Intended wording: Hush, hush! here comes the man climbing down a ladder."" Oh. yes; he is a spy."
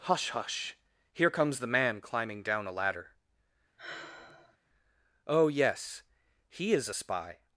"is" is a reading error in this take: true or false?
false